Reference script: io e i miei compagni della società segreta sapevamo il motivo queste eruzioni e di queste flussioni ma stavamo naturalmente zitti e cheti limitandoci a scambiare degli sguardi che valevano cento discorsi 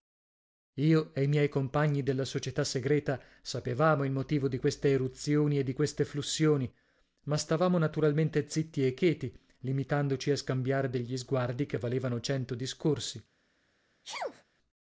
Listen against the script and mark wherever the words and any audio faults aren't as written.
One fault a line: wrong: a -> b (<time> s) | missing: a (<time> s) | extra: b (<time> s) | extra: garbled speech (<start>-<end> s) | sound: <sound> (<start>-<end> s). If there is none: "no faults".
extra: di (4.5 s)
sound: sneeze (14.0-14.4 s)